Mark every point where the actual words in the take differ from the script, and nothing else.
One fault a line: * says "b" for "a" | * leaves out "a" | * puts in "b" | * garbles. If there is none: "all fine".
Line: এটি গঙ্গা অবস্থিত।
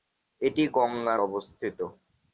all fine